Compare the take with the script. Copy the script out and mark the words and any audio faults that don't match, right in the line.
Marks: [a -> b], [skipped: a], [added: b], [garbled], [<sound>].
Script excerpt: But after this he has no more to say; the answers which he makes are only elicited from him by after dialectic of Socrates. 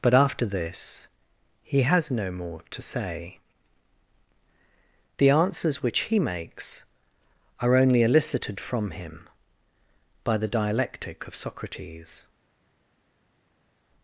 But after this he has no more to say; the answers which he makes are only elicited from him by [after -> the] dialectic of Socrates.